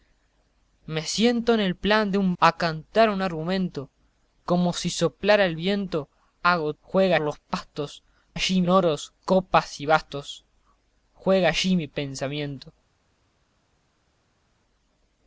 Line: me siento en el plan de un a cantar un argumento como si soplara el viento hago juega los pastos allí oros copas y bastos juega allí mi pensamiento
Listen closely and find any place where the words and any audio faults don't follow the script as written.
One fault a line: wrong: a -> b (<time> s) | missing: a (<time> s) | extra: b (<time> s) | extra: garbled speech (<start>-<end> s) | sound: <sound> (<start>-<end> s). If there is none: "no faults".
no faults